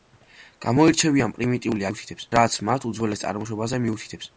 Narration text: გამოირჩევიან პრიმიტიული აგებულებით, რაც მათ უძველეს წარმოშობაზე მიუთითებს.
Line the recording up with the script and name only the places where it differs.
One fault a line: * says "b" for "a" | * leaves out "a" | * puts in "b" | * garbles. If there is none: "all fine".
* says "მიუთითებს" for "აგებულებით"